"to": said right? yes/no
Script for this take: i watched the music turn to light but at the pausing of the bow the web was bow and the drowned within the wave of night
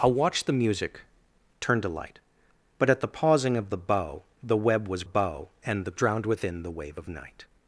yes